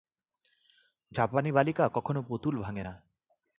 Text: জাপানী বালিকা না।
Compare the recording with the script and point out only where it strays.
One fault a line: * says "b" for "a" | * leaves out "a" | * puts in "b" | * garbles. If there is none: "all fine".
* puts in "কখনও পুতুল ভাঙে"